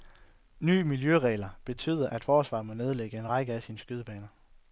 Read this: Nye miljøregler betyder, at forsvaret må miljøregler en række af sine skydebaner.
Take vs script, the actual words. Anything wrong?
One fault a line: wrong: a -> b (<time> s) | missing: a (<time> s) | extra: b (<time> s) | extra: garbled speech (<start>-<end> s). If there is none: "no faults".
wrong: miljøregler -> nedlægge (2.7 s)